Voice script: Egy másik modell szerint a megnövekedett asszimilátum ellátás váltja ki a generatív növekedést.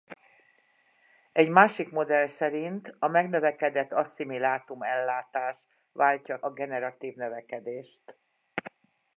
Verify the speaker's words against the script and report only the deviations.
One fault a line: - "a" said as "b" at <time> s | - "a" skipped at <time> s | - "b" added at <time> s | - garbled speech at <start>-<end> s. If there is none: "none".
- "ki" skipped at 6.4 s